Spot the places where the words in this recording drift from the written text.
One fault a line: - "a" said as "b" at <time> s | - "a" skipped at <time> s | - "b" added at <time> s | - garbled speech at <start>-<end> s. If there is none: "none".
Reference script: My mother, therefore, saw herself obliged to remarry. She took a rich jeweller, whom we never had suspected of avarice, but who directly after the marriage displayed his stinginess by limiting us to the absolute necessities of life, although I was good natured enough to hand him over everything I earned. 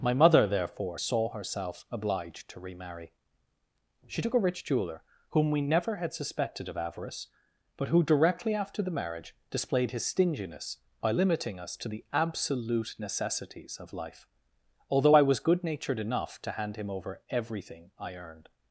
none